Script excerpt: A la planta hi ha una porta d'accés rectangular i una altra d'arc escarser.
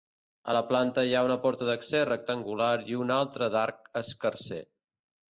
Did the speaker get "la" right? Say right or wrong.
right